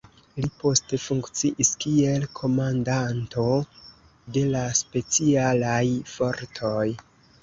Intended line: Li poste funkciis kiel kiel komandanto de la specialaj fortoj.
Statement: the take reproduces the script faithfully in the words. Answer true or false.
false